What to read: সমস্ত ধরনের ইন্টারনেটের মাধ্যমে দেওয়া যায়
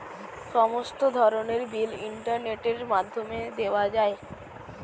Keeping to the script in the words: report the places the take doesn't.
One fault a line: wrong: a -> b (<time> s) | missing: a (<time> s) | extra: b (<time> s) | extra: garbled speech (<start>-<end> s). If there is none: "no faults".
extra: বিল (1.7 s)